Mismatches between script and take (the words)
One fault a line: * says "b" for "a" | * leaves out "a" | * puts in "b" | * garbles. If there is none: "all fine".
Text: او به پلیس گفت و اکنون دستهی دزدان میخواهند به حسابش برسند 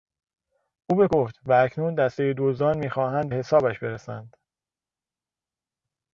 * leaves out "پلیس"
* leaves out "به"